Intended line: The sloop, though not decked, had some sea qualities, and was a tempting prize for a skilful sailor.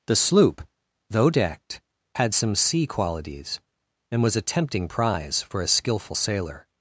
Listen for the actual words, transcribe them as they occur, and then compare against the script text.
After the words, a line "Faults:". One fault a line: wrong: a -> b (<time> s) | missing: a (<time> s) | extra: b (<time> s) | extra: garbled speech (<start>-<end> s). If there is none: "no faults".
The sloop, though decked, had some sea qualities, and was a tempting prize for a skilful sailor.
Faults:
missing: not (1.3 s)